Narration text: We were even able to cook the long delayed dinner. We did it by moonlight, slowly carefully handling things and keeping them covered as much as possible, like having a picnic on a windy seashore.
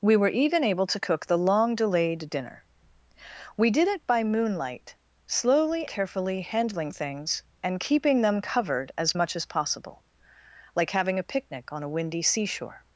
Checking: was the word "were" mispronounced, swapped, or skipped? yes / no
no